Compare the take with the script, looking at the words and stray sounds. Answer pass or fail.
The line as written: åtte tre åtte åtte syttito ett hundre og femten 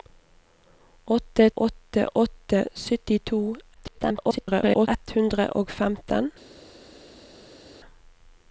fail